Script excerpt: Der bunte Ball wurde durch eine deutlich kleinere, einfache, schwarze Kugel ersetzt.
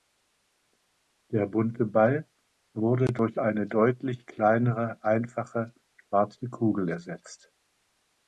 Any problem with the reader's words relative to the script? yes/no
no